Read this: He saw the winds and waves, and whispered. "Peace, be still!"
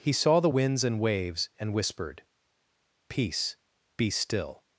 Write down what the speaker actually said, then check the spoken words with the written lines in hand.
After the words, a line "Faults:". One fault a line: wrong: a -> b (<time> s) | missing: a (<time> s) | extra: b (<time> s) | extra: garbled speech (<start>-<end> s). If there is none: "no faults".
He saw the winds and waves, and whispered. "Peace, be still!"
Faults:
no faults